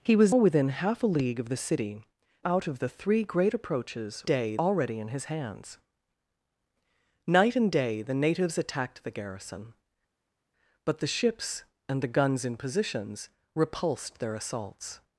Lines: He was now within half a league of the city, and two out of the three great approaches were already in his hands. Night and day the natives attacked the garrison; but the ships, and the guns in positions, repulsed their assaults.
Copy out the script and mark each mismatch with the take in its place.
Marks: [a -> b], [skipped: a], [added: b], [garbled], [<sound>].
He was [skipped: now] within half a league of the city, [skipped: and two] out of the three great approaches [were -> day] already in his hands. Night and day the natives attacked the garrison; but the ships, and the guns in positions, repulsed their assaults.